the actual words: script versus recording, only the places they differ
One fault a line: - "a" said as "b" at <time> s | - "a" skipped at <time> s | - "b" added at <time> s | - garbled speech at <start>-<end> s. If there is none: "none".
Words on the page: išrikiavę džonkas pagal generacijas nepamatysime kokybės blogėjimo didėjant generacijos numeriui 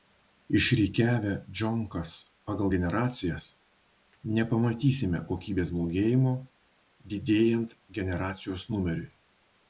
none